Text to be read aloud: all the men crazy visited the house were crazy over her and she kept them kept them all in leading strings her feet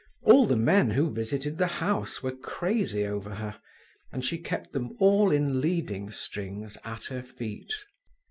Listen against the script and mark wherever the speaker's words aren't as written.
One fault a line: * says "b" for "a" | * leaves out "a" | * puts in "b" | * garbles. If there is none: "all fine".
* says "who" for "crazy"
* leaves out "kept them"
* puts in "at"